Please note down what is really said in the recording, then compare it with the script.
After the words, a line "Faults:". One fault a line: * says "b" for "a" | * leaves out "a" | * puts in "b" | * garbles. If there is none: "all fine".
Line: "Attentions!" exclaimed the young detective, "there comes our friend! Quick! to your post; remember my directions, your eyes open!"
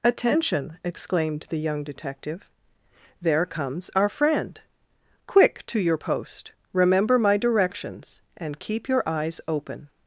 "Attention!" exclaimed the young detective, "there comes our friend! Quick! to your post; remember my directions, and keep your eyes open!"
Faults:
* says "Attention" for "Attentions"
* puts in "and keep"